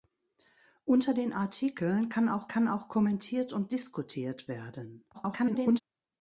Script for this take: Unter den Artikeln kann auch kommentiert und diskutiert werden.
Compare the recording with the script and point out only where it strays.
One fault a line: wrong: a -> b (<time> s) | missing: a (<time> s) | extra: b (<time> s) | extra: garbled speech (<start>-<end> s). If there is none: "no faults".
extra: kann auch (2.5 s)
extra: garbled speech (5.1-5.8 s)